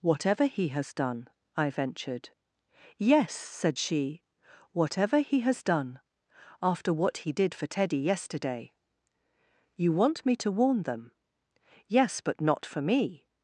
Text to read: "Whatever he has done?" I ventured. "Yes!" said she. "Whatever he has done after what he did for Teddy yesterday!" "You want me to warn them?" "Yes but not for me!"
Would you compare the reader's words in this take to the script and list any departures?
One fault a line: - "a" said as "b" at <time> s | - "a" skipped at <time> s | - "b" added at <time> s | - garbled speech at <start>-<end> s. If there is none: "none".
none